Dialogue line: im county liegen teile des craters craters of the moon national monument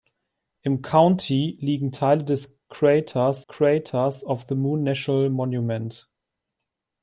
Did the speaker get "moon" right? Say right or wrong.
right